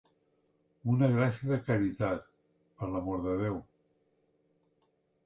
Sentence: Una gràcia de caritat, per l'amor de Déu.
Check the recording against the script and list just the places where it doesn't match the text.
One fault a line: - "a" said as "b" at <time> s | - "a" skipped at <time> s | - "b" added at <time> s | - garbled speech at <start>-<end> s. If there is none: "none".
none